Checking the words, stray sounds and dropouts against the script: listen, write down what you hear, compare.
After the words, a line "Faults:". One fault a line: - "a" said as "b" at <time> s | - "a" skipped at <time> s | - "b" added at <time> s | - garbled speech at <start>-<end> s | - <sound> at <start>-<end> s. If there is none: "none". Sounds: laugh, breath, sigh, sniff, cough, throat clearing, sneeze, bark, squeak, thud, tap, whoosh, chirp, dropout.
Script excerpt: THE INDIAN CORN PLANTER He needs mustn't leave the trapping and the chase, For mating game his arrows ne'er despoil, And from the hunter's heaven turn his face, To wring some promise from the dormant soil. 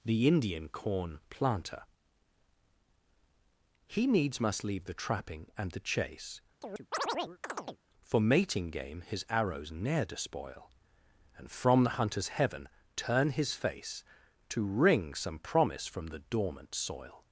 THE INDIAN CORN PLANTER He needs must leave the trapping and the chase, For mating game his arrows ne'er despoil, And from the hunter's heaven turn his face, To wring some promise from the dormant soil.
Faults:
- "mustn't" said as "must" at 4.4 s
- chirp at 6.6-7.8 s